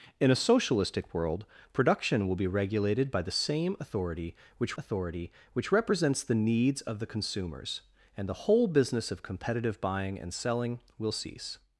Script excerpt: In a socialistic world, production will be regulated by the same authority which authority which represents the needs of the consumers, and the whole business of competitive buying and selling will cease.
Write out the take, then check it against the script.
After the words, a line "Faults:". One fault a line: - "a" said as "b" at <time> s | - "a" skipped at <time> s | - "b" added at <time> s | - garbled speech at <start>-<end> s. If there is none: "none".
In a socialistic world, production will be regulated by the same authority which authority which represents the needs of the consumers, and the whole business of competitive buying and selling will cease.
Faults:
none